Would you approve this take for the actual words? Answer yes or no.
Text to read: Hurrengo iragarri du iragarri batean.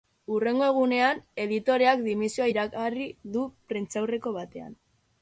no